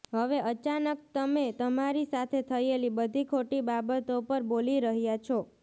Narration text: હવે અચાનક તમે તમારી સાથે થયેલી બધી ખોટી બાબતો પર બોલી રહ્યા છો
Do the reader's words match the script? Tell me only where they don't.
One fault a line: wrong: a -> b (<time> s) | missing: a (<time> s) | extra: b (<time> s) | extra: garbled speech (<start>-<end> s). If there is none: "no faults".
no faults